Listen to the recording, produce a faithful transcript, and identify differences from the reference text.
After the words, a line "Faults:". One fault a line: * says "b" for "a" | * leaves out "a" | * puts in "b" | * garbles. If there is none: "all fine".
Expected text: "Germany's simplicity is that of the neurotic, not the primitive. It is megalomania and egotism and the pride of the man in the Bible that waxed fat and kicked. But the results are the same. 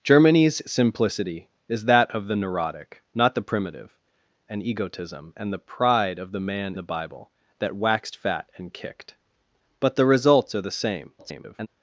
"Germany's simplicity is that of the neurotic, not the primitive. And egotism and the pride of the man the Bible that waxed fat and kicked. But the results are the same. [garbled]
Faults:
* leaves out "It is megalomania"
* leaves out "in"
* garbles